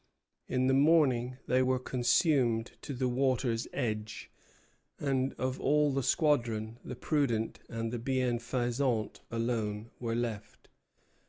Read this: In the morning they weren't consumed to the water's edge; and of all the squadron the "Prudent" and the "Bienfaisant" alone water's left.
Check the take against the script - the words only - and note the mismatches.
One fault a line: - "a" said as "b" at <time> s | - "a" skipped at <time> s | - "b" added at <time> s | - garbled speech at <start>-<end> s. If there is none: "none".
- "weren't" said as "were" at 1.6 s
- "water's" said as "were" at 10.0 s